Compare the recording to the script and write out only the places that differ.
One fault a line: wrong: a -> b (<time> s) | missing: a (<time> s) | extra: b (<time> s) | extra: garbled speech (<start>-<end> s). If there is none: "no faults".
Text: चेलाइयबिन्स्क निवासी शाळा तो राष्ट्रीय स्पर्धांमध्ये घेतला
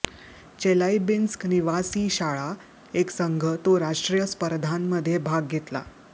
extra: एक संघ (2.9 s)
extra: भाग (5.2 s)